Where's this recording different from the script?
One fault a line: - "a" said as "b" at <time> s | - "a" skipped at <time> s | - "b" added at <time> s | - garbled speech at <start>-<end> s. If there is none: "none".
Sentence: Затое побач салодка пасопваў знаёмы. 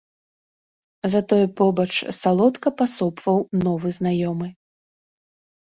- "новы" added at 3.7 s